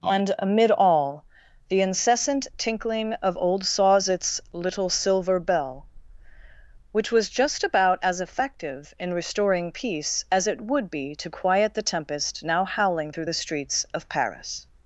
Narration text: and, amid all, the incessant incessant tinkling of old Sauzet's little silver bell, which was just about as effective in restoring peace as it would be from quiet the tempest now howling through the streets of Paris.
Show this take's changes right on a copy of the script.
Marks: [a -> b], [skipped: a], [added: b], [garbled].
and, amid all, the incessant [skipped: incessant] tinkling of old Sauzet's little silver bell, which was just about as effective in restoring peace as it would be [from -> to] quiet the tempest now howling through the streets of Paris.